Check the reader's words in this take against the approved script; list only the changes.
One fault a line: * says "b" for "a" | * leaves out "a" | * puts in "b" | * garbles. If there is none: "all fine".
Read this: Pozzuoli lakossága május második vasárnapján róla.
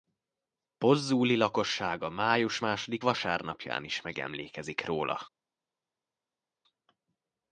* puts in "is megemlékezik"